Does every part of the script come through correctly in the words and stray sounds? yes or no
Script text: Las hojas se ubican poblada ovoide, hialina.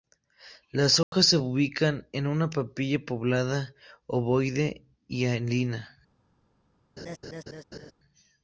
no